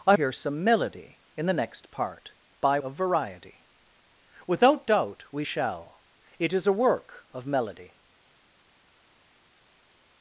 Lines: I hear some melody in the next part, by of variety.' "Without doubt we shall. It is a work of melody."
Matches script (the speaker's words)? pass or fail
pass